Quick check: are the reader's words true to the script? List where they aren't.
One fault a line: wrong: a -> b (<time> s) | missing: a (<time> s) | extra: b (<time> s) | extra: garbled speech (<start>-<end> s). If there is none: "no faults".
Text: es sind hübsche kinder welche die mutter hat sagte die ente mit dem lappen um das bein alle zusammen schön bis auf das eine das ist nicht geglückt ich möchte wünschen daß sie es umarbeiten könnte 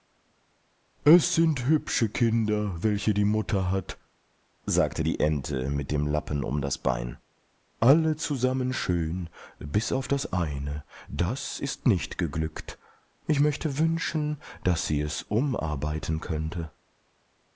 no faults